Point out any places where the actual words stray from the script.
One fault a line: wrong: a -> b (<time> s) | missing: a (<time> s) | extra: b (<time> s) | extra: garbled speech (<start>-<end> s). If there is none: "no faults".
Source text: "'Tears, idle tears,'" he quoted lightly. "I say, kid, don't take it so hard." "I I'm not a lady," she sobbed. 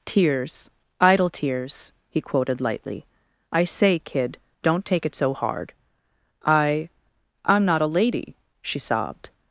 no faults